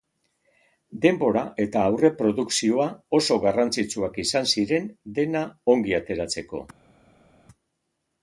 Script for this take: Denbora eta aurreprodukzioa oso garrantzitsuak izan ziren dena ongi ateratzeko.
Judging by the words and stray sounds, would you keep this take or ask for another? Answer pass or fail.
pass